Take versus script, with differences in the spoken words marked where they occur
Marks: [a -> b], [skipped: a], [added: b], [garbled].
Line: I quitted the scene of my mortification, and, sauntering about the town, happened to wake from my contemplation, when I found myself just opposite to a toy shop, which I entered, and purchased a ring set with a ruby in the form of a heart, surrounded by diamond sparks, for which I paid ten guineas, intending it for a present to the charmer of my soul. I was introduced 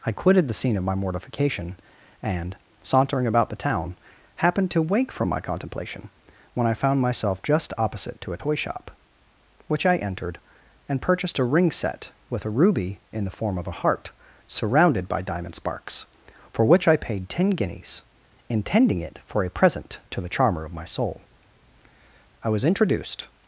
I quitted the scene of my mortification, and, sauntering about the town, happened to wake from my contemplation, when I found myself just opposite to a toy shop, which I entered, and purchased a ring set with a ruby in the form of a heart, surrounded by diamond sparks, for which I paid ten guineas, intending it for a present to the charmer of my soul. I was introduced